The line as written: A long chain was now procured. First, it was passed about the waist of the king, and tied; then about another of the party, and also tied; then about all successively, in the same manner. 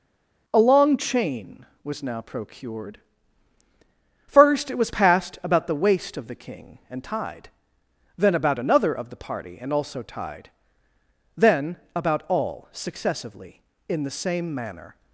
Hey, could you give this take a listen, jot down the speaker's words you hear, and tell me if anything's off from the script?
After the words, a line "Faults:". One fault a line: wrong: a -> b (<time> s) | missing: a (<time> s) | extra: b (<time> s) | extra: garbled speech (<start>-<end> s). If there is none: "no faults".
A long chain was now procured. First, it was passed about the waist of the king, and tied; then about another of the party, and also tied; then about all successively, in the same manner.
Faults:
no faults